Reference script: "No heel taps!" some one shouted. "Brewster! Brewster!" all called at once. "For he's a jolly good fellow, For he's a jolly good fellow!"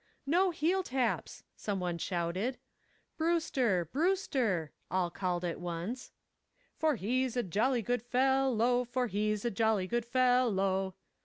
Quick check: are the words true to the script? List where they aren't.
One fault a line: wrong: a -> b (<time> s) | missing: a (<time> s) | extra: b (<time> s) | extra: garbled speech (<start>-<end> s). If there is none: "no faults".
no faults